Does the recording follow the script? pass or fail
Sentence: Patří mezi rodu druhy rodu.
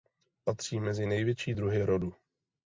fail